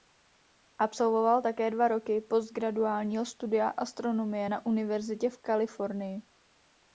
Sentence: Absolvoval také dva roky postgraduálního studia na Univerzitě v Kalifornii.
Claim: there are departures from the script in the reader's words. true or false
true